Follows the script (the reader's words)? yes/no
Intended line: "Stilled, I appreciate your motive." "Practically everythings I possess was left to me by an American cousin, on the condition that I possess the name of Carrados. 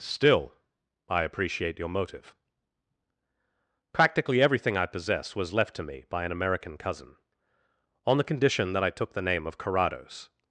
no